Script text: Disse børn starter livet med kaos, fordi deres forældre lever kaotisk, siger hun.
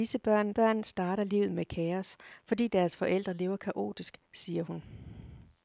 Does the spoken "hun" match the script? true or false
true